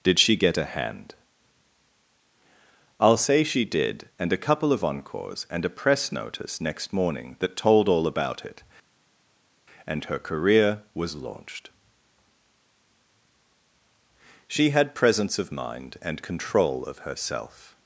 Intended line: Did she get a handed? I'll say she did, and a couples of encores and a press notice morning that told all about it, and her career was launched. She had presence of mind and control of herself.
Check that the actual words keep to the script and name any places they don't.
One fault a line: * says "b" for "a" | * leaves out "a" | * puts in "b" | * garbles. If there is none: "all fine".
* says "hand" for "handed"
* says "couple" for "couples"
* puts in "next"